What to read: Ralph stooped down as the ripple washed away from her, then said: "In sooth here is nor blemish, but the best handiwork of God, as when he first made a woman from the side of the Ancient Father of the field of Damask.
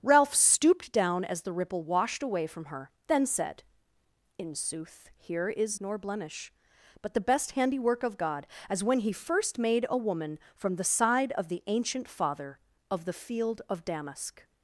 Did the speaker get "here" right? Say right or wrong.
right